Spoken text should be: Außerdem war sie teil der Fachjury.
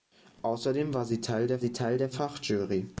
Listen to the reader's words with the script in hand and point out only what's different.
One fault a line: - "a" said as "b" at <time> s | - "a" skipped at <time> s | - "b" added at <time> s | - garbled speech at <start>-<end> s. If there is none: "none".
- "sie teil der" added at 1.6 s